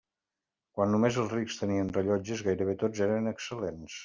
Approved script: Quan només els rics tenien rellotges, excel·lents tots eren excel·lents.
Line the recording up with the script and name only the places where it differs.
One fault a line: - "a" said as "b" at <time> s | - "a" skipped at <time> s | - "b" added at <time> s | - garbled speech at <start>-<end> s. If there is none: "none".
- "excel·lents" said as "gairebé" at 2.5 s